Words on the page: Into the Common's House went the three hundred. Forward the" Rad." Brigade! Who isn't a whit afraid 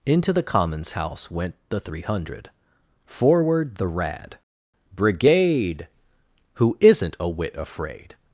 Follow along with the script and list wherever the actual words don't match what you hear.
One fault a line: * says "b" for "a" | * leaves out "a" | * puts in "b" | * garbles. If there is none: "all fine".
all fine